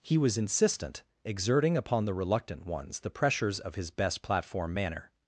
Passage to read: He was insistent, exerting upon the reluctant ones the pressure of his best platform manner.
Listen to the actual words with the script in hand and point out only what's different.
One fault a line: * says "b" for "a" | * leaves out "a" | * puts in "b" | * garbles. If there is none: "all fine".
* says "pressures" for "pressure"